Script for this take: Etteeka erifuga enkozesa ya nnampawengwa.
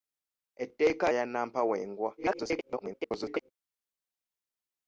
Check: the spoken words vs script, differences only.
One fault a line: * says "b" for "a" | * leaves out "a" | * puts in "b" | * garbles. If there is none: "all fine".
* leaves out "erifuga enkozesa"
* garbles